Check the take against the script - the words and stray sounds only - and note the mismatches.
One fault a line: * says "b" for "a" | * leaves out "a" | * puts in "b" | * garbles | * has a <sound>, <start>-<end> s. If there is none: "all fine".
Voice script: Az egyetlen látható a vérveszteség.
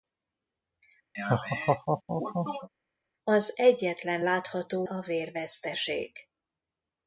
* has a laugh, 1.1-2.7 s